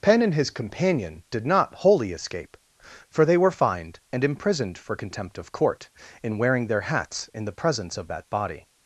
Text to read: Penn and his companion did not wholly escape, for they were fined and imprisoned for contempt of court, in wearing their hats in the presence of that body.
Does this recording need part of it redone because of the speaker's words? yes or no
no